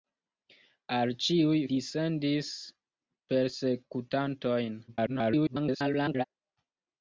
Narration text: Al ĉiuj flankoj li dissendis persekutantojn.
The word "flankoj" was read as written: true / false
false